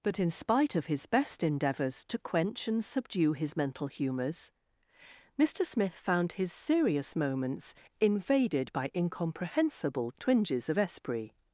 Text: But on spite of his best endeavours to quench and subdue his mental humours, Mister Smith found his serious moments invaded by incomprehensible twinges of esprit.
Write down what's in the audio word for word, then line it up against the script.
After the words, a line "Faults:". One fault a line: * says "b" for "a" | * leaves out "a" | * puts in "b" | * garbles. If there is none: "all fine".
But in spite of his best endeavours to quench and subdue his mental humours, Mister Smith found his serious moments invaded by incomprehensible twinges of esprit.
Faults:
* says "in" for "on"